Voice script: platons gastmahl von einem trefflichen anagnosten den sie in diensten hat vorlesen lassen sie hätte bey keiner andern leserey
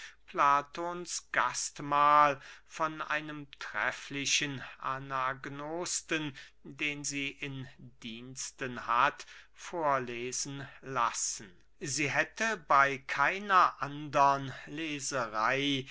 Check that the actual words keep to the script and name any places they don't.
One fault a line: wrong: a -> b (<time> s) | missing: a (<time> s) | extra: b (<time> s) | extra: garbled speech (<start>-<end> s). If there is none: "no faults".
no faults